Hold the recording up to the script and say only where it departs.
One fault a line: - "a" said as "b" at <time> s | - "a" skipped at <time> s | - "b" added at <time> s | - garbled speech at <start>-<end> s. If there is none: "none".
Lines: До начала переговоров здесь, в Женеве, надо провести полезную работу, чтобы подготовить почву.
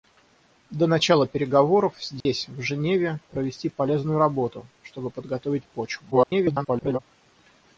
- "надо" skipped at 3.2 s
- garbled speech at 6.1-7.0 s